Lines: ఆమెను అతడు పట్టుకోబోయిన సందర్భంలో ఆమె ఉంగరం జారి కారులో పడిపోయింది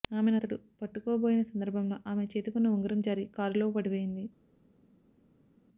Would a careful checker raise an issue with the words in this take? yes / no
yes